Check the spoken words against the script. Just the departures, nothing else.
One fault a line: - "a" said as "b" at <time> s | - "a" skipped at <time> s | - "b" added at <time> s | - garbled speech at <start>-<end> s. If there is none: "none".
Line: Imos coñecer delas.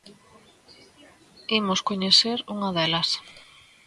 - "unha" added at 2.5 s